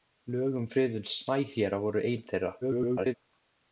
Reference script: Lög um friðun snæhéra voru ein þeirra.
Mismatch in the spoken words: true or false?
true